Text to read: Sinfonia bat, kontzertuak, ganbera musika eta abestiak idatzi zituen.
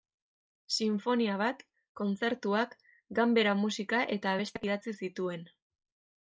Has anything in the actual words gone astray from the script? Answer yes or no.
no